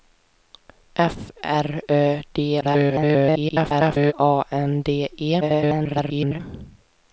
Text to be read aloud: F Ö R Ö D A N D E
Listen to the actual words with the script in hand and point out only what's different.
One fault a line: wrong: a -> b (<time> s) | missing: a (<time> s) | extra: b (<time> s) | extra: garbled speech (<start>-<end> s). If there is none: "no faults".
missing: Ö (1.2 s)
extra: garbled speech (2.6-4.1 s)
extra: garbled speech (5.4-6.4 s)